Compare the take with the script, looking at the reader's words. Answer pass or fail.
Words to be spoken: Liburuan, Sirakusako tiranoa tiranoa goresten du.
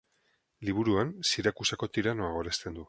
fail